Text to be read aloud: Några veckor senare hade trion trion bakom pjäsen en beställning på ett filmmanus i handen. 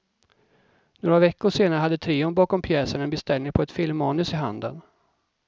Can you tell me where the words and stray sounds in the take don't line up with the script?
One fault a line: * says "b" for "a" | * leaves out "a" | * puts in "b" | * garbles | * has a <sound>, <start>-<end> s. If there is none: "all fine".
* leaves out "trion"